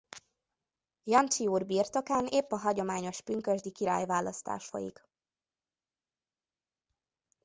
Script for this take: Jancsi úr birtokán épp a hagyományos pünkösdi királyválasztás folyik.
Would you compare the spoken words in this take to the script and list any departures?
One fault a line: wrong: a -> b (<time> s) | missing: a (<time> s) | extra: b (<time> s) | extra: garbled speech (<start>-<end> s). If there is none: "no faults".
no faults